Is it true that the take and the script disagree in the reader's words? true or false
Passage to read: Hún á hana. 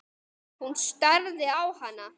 true